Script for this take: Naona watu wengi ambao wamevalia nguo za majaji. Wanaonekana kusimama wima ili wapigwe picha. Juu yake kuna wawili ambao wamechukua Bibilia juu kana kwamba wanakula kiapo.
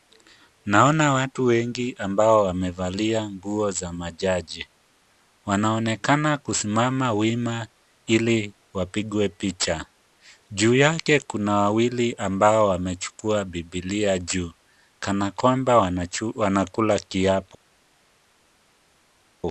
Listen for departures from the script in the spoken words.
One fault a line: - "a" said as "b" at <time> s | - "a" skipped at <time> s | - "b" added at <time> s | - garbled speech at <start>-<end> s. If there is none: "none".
none